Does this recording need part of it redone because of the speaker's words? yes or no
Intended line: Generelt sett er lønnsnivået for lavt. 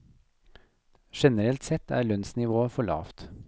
no